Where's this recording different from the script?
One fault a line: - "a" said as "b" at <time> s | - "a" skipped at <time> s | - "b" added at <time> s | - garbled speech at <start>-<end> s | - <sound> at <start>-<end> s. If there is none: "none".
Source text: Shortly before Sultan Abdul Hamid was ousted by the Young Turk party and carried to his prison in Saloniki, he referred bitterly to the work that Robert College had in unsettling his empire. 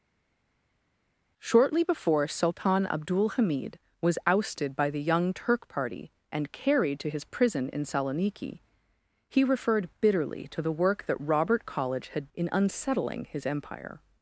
none